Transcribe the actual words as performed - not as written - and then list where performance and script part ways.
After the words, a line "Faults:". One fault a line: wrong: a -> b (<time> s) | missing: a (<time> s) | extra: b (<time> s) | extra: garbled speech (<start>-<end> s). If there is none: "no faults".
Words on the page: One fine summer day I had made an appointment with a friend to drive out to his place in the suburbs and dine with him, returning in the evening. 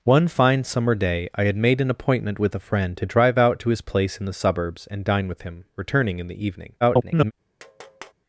One fine summer day I had made an appointment with a friend to drive out to his place in the suburbs and dine with him, returning in the evening. [garbled]
Faults:
extra: garbled speech (6.8-7.3 s)